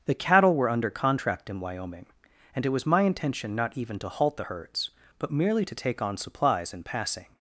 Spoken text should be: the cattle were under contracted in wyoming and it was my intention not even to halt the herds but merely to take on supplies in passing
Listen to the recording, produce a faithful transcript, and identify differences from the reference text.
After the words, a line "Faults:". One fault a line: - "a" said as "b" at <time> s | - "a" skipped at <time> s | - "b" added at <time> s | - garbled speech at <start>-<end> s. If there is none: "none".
the cattle were under contract in wyoming and it was my intention not even to halt the herds but merely to take on supplies in passing
Faults:
- "contracted" said as "contract" at 0.9 s